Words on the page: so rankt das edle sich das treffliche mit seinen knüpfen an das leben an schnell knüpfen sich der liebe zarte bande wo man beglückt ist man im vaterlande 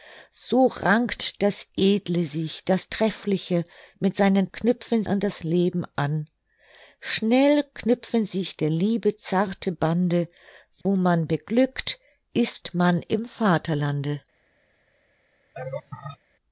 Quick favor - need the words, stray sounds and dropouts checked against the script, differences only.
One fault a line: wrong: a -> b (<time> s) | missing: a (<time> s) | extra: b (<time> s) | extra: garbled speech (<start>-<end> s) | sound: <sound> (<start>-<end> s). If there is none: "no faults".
sound: dropout (10.8-10.9 s)
sound: laugh (15.5-16.2 s)